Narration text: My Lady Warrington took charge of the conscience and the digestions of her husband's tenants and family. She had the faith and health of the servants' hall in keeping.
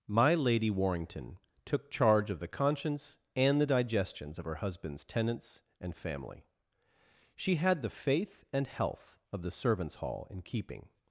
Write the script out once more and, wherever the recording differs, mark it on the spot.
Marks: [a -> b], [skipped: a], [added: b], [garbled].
My Lady Warrington took charge of the conscience and the digestions of her husband's tenants and family. She had the faith and health of the servants' hall in keeping.